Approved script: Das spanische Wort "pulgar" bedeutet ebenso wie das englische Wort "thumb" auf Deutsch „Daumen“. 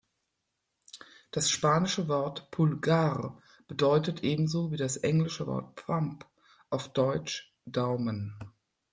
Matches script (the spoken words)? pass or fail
pass